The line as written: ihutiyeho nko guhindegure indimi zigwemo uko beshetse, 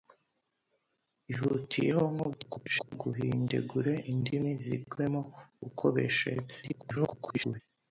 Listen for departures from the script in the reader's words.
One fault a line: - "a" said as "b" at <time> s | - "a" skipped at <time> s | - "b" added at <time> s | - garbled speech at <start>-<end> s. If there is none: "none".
- garbled speech at 2.3-2.9 s
- garbled speech at 6.6-7.6 s